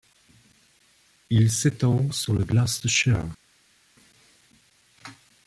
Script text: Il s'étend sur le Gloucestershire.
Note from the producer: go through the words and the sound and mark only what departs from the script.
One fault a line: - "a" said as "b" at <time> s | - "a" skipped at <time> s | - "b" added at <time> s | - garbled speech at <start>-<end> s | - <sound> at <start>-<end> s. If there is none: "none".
none